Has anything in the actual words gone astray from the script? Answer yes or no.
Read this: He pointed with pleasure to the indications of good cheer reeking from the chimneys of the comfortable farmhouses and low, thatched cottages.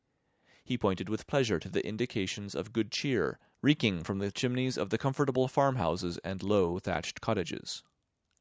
no